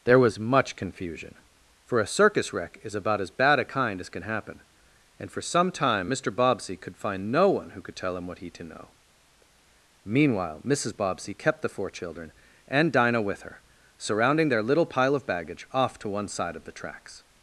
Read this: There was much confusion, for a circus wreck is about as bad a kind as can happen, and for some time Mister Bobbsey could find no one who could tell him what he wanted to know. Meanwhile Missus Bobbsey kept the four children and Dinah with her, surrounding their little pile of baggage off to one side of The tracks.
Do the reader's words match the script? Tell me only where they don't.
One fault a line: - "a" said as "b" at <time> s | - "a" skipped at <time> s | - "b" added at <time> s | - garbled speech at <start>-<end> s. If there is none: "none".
- "wanted" skipped at 8.5 s